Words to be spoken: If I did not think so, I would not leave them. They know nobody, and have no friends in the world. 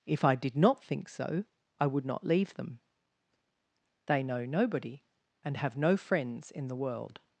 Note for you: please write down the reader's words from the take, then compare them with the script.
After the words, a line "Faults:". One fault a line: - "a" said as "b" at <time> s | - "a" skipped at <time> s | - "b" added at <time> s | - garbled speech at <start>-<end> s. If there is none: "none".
If I did not think so, I would not leave them. They know nobody, and have no friends in the world.
Faults:
none